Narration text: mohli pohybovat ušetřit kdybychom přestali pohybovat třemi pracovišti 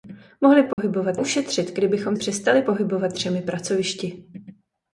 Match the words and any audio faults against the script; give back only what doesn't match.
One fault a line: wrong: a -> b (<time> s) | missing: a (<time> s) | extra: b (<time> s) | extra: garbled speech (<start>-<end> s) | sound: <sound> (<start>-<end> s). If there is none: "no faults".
sound: dropout (0.7-0.8 s)